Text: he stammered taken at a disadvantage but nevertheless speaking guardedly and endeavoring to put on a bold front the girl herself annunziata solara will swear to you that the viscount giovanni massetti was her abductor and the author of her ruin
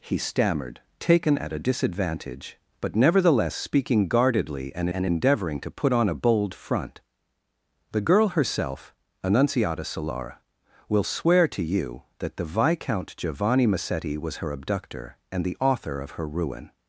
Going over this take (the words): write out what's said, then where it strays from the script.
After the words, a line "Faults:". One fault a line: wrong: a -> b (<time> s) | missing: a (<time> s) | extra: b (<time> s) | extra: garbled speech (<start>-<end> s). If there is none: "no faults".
he stammered taken at a disadvantage but nevertheless speaking guardedly and and endeavoring to put on a bold front the girl herself annunziata solara will swear to you that the viscount giovanni massetti was her abductor and the author of her ruin
Faults:
extra: and (4.9 s)